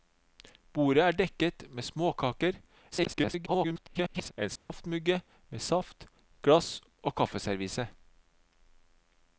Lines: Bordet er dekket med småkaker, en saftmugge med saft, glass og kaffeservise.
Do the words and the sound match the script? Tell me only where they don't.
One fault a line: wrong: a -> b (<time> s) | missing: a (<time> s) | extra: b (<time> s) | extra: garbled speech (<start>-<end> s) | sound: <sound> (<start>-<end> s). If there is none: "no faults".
extra: garbled speech (2.9-4.3 s)
sound: dropout (4.6-4.7 s)